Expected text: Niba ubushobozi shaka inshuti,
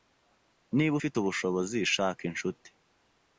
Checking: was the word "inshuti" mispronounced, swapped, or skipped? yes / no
no